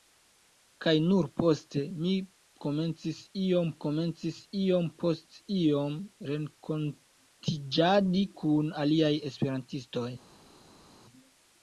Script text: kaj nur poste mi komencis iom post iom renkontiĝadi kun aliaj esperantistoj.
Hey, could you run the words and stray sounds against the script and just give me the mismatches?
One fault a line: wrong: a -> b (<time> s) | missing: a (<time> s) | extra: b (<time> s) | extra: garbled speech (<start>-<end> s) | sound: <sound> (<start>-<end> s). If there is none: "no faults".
extra: komencis iom (3.8 s)